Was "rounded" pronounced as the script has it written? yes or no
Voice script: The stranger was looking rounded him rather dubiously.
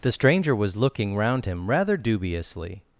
no